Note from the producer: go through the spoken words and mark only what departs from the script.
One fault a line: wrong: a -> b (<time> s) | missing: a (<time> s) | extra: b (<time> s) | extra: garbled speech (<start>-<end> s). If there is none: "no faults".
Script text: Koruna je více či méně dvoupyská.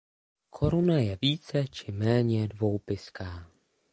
no faults